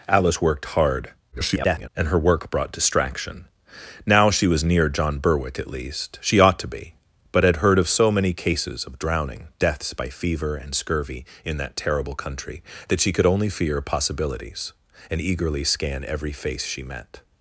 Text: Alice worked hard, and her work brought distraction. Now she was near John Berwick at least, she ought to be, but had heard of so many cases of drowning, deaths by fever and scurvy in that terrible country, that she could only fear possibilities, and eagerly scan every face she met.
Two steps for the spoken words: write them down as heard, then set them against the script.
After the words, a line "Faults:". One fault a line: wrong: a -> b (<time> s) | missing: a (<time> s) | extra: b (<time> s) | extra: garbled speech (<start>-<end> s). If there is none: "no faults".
Alice worked hard, [garbled] and her work brought distraction. Now she was near John Berwick at least, she ought to be, but had heard of so many cases of drowning, deaths by fever and scurvy in that terrible country, that she could only fear possibilities, and eagerly scan every face she met.
Faults:
extra: garbled speech (1.3-1.9 s)